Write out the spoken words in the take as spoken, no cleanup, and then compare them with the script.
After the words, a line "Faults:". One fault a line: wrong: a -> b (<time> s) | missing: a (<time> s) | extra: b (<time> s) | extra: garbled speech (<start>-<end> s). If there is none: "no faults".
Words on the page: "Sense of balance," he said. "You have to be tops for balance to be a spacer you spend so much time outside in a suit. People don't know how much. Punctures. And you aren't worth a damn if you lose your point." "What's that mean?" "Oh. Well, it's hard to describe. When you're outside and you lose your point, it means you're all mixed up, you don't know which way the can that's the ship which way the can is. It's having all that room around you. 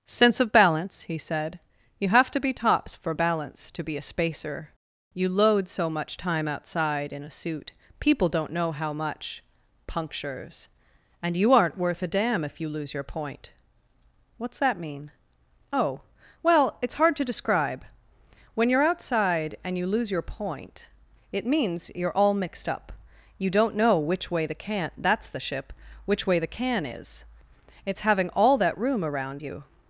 "Sense of balance," he said. "You have to be tops for balance to be a spacer you load so much time outside in a suit. People don't know how much. Punctures. And you aren't worth a damn if you lose your point." "What's that mean?" "Oh. Well, it's hard to describe. When you're outside and you lose your point, it means you're all mixed up, you don't know which way the can that's the ship which way the can is. It's having all that room around you.
Faults:
wrong: spend -> load (5.3 s)